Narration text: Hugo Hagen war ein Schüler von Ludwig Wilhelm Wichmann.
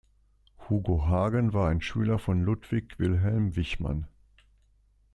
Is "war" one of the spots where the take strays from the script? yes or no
no